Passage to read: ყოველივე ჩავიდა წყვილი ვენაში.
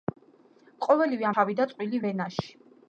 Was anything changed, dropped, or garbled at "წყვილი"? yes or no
no